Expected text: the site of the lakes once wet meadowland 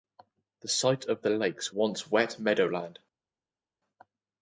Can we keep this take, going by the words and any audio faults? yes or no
yes